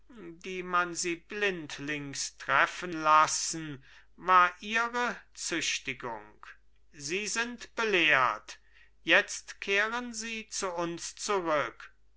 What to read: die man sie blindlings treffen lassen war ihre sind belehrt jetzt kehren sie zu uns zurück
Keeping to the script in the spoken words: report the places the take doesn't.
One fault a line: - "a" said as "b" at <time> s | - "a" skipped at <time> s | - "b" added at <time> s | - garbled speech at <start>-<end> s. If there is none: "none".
- "züchtigung sie" added at 5.3 s